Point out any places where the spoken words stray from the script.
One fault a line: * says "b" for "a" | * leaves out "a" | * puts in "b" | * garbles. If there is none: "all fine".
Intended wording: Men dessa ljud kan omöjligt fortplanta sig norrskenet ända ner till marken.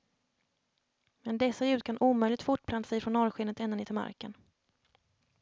* puts in "från"